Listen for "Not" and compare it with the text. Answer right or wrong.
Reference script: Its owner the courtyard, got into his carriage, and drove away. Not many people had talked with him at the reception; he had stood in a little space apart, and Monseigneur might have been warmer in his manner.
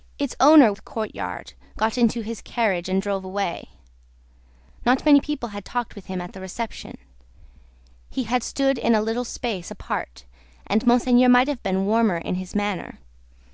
right